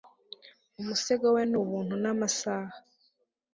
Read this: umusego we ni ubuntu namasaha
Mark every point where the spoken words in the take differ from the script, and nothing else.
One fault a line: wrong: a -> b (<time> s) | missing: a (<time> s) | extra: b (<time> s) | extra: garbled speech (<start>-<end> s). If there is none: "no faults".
no faults